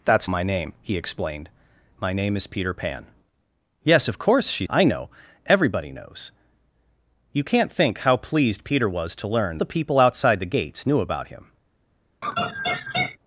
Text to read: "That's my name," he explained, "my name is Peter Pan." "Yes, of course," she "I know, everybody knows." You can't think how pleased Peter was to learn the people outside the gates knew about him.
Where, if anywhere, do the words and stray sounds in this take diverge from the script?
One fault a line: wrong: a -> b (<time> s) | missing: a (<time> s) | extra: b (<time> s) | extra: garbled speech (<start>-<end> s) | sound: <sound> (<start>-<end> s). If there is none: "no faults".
sound: laugh (12.2-13.2 s)